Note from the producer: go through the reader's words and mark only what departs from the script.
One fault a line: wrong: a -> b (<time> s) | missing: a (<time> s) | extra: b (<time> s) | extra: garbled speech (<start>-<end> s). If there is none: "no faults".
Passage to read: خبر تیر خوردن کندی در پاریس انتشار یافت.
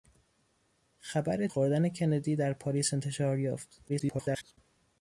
missing: تیر (1.5 s)
extra: garbled speech (3.9-4.6 s)